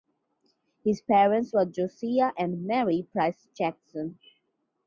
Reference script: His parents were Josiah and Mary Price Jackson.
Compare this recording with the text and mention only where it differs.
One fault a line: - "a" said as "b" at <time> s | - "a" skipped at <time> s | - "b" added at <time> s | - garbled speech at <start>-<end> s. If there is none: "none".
none